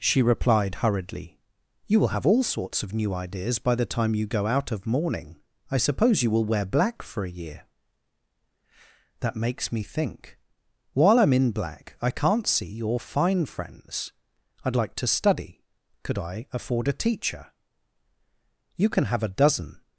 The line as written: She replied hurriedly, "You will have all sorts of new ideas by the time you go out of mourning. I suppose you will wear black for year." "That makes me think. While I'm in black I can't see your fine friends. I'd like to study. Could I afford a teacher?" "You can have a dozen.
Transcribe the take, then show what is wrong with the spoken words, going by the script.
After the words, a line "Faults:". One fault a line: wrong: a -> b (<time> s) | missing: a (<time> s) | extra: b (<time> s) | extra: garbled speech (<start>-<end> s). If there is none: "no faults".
She replied hurriedly, "You will have all sorts of new ideas by the time you go out of mourning. I suppose you will wear black for a year." "That makes me think. While I'm in black I can't see your fine friends. I'd like to study. Could I afford a teacher?" "You can have a dozen.
Faults:
extra: a (7.2 s)